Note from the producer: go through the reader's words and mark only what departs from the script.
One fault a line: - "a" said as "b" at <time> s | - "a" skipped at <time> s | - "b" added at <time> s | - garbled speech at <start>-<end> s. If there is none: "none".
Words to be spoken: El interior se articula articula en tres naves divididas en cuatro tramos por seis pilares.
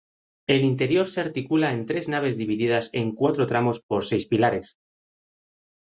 - "articula" skipped at 1.7 s